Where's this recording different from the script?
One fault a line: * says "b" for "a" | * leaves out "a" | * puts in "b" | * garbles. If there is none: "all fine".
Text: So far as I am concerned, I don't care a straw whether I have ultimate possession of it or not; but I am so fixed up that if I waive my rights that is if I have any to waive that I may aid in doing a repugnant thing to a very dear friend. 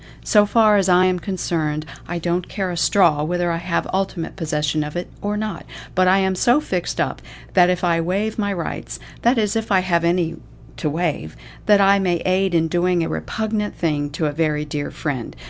all fine